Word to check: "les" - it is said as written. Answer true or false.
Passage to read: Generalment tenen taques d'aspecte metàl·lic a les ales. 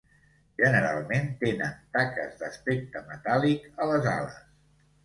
true